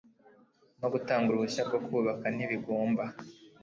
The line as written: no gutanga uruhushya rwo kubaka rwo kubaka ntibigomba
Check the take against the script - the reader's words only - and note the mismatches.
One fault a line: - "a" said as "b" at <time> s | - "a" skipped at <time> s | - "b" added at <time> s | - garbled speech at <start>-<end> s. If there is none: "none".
- "rwo kubaka" skipped at 2.3 s